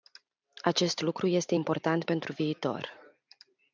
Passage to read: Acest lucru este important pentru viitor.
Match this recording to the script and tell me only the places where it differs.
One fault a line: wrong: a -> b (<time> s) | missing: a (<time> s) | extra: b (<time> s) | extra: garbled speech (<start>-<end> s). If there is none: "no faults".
no faults